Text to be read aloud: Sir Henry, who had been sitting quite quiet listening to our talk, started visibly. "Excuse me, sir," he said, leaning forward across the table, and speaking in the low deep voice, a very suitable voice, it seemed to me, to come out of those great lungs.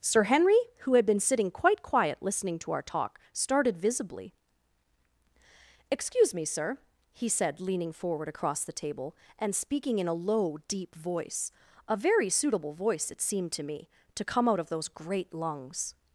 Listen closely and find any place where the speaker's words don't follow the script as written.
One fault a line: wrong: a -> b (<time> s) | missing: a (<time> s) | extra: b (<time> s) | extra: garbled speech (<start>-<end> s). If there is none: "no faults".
wrong: the -> a (10.1 s)